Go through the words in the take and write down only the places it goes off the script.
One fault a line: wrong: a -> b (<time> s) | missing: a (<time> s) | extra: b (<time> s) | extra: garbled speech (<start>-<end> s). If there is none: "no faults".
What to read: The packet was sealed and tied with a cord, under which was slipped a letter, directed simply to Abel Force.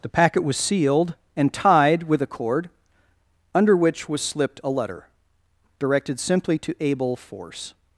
no faults